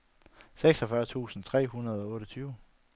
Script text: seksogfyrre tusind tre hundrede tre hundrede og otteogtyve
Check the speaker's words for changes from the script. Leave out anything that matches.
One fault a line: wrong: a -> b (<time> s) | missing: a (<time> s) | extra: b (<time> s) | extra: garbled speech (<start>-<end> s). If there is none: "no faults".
missing: tre hundrede (2.0 s)